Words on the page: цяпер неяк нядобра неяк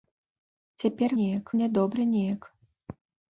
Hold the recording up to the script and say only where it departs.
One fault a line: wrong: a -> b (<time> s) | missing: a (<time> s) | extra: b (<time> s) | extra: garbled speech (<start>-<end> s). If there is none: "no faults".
no faults